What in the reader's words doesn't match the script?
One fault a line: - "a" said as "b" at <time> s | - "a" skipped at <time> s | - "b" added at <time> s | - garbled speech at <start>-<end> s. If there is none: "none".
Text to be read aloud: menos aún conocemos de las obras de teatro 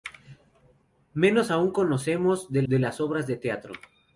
- "de" added at 2.7 s